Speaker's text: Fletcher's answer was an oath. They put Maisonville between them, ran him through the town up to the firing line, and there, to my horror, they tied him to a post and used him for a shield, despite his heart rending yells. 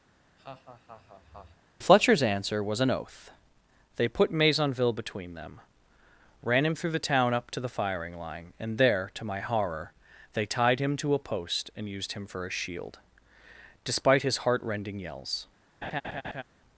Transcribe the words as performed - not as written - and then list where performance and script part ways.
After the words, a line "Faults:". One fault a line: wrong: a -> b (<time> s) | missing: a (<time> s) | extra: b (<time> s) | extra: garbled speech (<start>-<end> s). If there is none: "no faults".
Fletcher's answer was an oath. They put Maisonville between them, ran him through the town up to the firing line, and there, to my horror, they tied him to a post and used him for a shield, despite his heart rending yells.
Faults:
no faults